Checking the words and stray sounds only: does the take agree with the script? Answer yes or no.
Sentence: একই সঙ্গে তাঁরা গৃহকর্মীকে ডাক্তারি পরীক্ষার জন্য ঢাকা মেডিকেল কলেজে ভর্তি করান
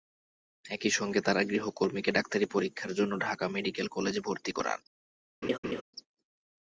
no